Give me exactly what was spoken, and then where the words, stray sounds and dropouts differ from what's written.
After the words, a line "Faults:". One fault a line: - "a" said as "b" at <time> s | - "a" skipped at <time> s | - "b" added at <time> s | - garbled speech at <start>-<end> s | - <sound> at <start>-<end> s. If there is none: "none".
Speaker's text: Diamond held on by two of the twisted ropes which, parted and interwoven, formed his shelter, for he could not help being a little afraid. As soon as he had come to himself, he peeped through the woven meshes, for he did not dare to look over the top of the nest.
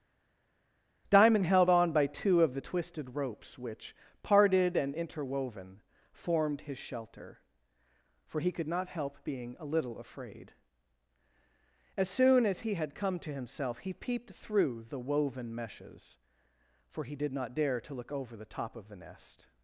Diamond held on by two of the twisted ropes which, parted and interwoven, formed his shelter, for he could not help being a little afraid. As soon as he had come to himself, he peeped through the woven meshes, for he did not dare to look over the top of the nest.
Faults:
none